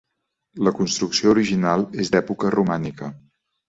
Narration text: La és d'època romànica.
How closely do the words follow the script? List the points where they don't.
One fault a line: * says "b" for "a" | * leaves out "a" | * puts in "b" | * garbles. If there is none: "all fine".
* puts in "construcció original"